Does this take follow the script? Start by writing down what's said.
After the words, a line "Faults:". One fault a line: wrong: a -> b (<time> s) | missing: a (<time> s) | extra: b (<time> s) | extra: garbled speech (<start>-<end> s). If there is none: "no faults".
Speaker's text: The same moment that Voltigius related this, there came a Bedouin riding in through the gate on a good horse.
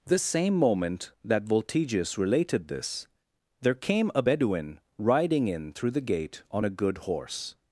The same moment that Voltigius related this, there came a Bedouin riding in through the gate on a good horse.
Faults:
no faults